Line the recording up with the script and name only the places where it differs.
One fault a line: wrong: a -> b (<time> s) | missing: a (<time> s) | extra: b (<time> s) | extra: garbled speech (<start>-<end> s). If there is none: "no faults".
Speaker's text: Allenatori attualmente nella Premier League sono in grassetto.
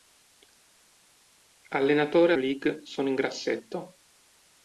missing: attualmente nella Premier (2.3 s)